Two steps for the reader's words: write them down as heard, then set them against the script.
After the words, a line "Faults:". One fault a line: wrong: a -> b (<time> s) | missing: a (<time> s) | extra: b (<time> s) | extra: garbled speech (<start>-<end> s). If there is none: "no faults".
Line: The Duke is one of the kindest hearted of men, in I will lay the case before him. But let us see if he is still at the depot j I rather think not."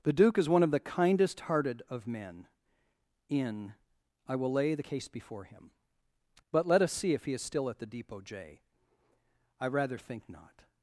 The Duke is one of the kindest hearted of men, in I will lay the case before him. But let us see if he is still at the depot j I rather think not."
Faults:
no faults